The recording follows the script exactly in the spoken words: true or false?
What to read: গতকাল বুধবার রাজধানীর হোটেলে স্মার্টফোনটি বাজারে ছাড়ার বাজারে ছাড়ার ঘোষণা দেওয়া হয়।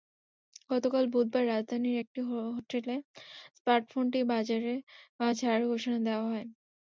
false